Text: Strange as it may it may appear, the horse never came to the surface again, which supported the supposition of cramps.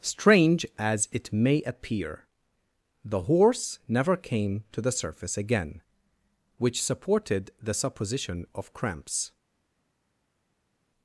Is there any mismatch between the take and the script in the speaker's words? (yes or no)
yes